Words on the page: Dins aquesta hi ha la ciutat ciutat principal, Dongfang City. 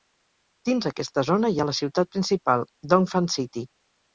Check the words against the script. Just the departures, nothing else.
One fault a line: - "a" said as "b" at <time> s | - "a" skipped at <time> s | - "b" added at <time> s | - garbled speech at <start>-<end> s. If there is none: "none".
- "zona" added at 1.3 s
- "ciutat" skipped at 2.1 s